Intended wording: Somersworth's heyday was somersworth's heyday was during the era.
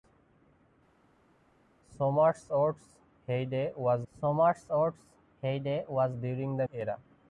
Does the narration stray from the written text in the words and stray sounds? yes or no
no